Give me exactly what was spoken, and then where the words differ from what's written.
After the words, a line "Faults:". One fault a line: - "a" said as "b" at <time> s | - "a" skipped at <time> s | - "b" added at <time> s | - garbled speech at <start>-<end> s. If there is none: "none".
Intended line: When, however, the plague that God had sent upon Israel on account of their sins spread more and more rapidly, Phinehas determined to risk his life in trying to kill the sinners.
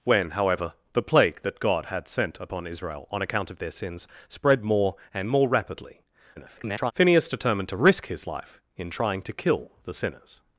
When, however, the plague that God had sent upon Israel on account of their sins spread more and more rapidly, [garbled] Phinehas determined to risk his life in trying to kill the sinners.
Faults:
- garbled speech at 6.4-6.9 s